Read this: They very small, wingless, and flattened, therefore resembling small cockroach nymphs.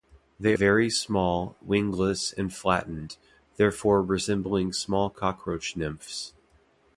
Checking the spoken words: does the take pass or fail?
pass